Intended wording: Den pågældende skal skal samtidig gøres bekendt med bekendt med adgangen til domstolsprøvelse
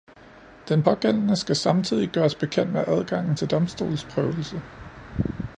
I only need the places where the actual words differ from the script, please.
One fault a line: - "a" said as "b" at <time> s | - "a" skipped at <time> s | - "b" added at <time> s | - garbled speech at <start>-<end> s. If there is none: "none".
- "skal" skipped at 1.5 s
- "bekendt med" skipped at 2.8 s